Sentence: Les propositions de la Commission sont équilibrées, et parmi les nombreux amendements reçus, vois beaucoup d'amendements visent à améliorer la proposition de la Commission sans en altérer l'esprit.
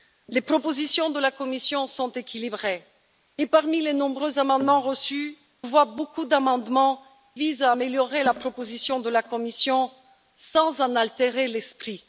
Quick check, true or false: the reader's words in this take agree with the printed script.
true